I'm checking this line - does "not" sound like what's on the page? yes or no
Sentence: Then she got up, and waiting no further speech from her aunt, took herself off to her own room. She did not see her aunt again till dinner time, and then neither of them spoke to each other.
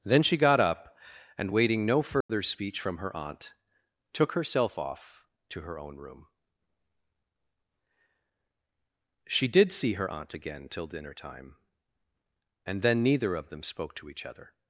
no